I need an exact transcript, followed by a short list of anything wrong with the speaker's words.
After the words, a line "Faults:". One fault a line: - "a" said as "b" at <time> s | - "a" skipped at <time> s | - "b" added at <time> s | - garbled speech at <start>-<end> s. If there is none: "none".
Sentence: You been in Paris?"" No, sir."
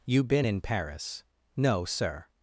You been in Paris?"" No, sir."
Faults:
none